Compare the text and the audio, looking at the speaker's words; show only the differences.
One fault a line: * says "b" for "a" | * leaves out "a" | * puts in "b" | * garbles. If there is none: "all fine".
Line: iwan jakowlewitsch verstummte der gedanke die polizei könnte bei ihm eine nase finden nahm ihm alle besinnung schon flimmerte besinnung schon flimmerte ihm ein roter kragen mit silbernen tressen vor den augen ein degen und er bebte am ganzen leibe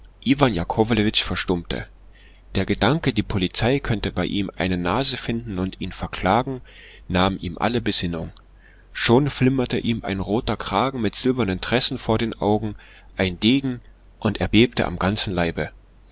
* puts in "und ihn verklagen"
* leaves out "besinnung schon flimmerte"